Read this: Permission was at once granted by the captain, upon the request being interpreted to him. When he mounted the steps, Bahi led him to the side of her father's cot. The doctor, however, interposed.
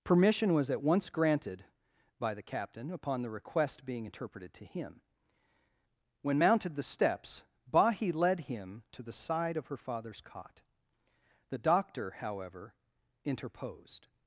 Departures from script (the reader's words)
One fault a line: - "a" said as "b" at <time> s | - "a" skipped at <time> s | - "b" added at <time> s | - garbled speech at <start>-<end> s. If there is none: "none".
- "he" skipped at 6.4 s